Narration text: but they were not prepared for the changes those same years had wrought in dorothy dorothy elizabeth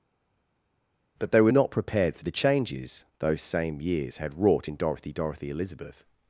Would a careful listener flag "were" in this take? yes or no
no